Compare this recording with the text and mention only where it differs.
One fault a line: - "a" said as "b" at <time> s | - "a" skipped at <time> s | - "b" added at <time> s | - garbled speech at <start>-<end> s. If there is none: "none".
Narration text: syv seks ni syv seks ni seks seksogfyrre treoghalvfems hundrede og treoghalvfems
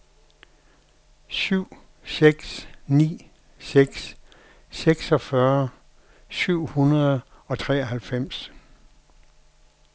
- "syv" skipped at 3.3 s
- "ni seks" skipped at 4.2 s
- "treoghalvfems" said as "syv" at 6.3 s